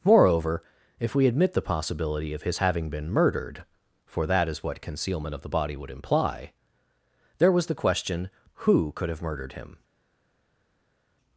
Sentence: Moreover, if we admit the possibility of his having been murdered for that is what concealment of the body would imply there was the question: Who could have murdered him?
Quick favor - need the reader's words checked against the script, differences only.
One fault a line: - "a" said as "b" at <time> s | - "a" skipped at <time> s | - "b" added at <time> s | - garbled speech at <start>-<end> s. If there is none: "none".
none